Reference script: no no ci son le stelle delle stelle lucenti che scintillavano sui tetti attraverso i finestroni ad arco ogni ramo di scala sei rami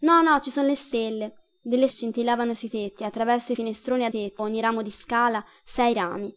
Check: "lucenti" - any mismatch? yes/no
yes